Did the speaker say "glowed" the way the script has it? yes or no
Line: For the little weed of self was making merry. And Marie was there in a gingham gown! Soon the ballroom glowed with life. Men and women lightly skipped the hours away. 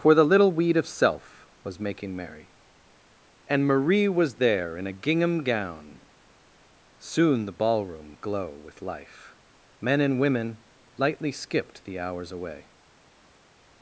no